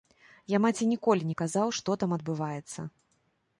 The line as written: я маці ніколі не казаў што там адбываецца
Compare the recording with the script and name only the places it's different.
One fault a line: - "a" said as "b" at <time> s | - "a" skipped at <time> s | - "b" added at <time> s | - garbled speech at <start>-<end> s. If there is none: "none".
none